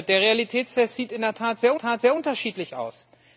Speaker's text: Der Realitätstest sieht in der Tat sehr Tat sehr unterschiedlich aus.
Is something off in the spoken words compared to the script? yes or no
no